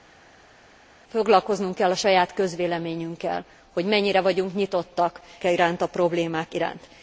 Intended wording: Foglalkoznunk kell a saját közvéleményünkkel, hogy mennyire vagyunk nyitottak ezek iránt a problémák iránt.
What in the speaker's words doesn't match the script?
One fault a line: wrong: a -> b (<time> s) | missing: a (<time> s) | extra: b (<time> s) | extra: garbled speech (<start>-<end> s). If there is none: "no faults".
missing: ezek (5.2 s)